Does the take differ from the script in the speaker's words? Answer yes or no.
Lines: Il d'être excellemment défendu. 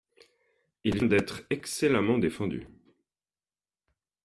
no